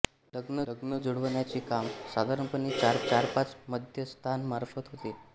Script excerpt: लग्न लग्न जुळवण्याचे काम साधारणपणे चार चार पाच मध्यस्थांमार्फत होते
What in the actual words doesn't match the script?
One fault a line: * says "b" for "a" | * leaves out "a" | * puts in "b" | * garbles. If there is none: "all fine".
all fine